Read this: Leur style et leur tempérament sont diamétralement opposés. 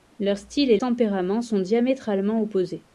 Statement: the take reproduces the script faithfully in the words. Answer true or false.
false